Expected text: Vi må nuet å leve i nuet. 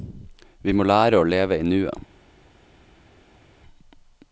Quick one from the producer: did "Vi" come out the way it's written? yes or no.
yes